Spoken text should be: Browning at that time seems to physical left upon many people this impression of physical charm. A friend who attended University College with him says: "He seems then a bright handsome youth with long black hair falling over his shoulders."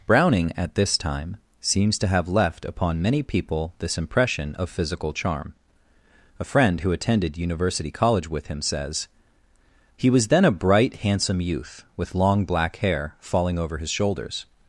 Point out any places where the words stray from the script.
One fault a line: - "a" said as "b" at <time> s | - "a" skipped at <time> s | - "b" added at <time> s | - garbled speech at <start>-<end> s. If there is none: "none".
- "that" said as "this" at 0.8 s
- "physical" said as "have" at 2.1 s
- "seems" said as "was" at 10.1 s